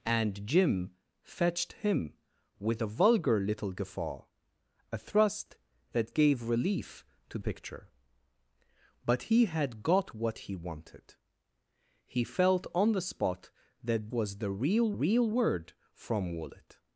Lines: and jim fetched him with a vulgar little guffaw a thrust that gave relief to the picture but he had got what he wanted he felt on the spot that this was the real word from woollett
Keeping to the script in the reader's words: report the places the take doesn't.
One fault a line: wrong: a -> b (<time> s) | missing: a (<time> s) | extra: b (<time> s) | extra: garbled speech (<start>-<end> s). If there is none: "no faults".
missing: the (7.4 s)
missing: this (14.1 s)
extra: real (14.9 s)